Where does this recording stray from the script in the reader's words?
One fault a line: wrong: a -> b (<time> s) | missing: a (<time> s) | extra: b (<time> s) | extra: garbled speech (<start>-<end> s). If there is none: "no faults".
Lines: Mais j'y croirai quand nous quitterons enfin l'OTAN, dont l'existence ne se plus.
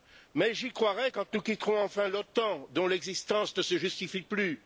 extra: justifie (3.8 s)